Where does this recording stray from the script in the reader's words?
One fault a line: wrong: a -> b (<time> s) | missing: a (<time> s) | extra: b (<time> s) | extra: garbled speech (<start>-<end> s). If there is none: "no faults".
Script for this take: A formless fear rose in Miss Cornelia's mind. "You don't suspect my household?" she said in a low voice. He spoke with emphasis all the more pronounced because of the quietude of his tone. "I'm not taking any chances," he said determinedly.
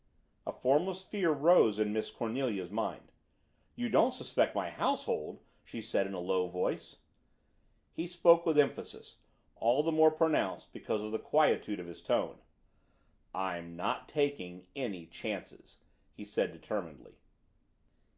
no faults